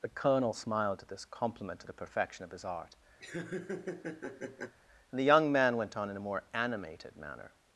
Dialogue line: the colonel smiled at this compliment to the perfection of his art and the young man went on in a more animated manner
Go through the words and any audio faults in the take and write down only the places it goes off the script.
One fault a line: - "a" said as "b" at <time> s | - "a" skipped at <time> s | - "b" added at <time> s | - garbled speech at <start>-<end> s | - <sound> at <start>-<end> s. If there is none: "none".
- laugh at 3.2-4.8 s